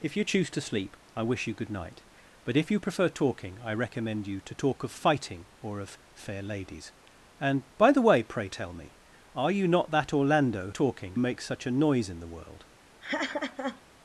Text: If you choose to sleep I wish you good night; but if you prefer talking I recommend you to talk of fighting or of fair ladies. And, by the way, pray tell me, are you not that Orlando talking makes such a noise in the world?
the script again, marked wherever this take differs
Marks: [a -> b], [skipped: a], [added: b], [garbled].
If you choose to sleep I wish you good night; but if you prefer talking I recommend you to talk of fighting or of fair ladies. And, by the way, pray tell me, are you not that Orlando talking makes such a noise in the world?